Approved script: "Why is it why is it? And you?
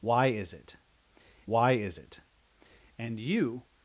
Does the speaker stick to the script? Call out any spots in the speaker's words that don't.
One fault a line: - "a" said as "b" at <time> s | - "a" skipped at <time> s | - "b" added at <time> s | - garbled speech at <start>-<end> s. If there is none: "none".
none